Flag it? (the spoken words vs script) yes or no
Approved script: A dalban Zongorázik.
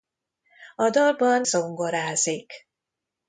no